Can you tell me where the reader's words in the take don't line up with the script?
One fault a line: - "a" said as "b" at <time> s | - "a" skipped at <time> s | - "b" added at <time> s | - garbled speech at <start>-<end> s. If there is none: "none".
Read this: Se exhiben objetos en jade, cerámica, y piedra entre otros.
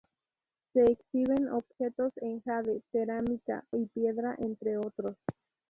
none